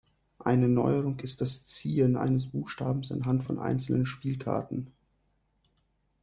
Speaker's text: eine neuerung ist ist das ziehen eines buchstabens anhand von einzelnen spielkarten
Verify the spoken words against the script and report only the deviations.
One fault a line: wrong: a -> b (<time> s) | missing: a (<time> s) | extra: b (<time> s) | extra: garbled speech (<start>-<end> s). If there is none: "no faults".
missing: ist (1.4 s)